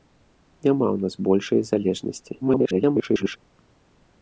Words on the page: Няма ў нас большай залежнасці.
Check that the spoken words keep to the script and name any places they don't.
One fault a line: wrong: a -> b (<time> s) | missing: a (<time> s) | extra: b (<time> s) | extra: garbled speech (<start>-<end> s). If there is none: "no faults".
extra: garbled speech (2.4-3.4 s)